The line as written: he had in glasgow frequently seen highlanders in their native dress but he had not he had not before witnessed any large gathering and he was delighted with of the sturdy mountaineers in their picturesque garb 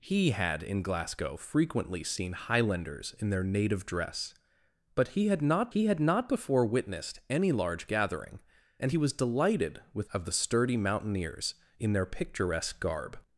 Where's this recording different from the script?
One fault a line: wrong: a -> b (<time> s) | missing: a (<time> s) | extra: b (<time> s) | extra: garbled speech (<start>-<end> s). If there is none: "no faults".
no faults